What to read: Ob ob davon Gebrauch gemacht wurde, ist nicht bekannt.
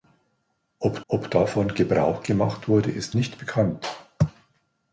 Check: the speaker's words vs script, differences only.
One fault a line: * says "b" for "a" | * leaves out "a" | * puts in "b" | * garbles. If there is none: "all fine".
all fine